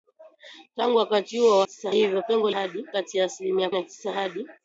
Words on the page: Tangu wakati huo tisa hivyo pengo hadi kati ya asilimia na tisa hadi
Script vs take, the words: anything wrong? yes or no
no